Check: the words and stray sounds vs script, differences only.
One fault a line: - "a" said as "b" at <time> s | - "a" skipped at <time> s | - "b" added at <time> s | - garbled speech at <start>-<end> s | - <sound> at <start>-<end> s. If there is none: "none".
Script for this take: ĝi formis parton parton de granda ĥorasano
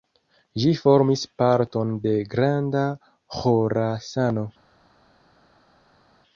- "parton" skipped at 1.9 s